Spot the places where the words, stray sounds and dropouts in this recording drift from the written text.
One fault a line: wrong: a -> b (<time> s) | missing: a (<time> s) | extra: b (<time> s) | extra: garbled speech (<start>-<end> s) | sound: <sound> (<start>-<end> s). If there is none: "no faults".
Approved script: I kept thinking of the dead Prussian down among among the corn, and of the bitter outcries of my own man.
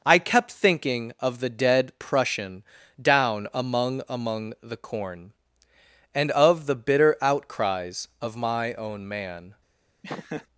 sound: laugh (10.0-10.5 s)